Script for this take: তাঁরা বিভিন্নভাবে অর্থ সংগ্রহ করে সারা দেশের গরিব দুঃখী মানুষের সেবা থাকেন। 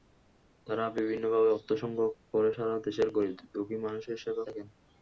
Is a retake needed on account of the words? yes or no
no